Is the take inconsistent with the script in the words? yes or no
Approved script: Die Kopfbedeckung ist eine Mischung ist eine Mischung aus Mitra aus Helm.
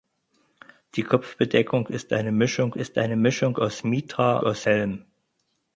no